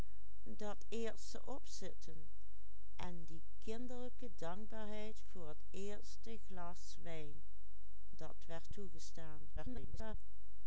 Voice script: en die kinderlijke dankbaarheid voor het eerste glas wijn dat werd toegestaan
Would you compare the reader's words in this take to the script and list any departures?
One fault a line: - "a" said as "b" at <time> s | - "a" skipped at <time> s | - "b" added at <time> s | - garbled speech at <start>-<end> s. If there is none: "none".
- garbled speech at 9.6-10.1 s